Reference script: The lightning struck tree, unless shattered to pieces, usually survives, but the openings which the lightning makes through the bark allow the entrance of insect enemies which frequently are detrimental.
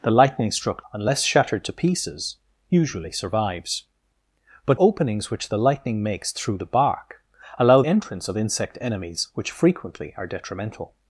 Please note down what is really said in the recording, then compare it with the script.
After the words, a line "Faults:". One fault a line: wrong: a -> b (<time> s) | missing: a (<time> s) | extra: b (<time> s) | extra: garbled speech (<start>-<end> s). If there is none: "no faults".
The lightning struck unless shattered to pieces, usually survives, but openings which the lightning makes through the bark allow entrance of insect enemies which frequently are detrimental.
Faults:
missing: tree (0.8 s)
missing: the (4.8 s)
missing: the (7.8 s)